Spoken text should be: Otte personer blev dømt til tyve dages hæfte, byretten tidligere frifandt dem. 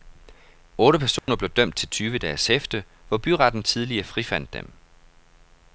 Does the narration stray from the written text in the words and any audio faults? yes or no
yes